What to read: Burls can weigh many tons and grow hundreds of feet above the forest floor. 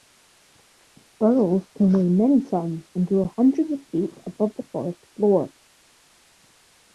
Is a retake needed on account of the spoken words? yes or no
no